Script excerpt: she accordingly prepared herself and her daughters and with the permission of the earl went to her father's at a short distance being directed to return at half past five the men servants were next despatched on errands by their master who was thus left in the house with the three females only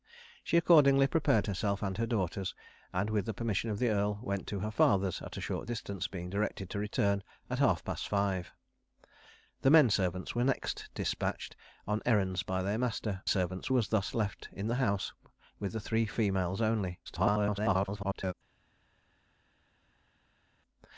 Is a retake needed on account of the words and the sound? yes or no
yes